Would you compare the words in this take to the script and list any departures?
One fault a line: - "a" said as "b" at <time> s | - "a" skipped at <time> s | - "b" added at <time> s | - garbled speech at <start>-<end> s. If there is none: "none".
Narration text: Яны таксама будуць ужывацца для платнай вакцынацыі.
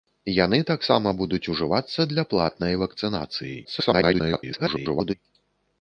- garbled speech at 3.6-5.1 s